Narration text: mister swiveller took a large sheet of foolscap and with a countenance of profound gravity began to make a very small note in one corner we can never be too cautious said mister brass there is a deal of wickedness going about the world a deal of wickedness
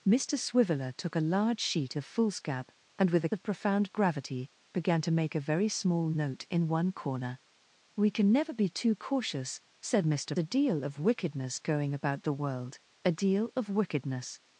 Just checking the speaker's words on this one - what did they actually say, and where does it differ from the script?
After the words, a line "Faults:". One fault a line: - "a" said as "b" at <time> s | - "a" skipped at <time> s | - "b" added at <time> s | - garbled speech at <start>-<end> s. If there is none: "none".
mister swiveller took a large sheet of foolscap and with a of profound gravity began to make a very small note in one corner we can never be too cautious said mister a deal of wickedness going about the world a deal of wickedness
Faults:
- "countenance" skipped at 3.3 s
- "brass there is" skipped at 10.3 s